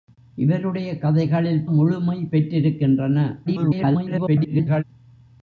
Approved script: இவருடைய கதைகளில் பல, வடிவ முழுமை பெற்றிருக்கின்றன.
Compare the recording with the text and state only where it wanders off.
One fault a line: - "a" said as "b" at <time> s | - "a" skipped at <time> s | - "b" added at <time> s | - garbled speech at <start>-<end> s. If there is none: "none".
- "பல வடிவ" skipped at 1.7 s
- garbled speech at 3.5-4.8 s